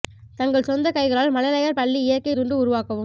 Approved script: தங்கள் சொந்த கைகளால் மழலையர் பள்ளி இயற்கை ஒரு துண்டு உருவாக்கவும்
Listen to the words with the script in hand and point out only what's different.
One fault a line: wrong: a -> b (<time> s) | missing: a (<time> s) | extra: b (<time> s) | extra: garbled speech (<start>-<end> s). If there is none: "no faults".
missing: ஒரு (2.3 s)